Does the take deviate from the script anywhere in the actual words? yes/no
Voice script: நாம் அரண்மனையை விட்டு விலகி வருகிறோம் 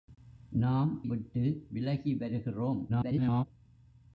yes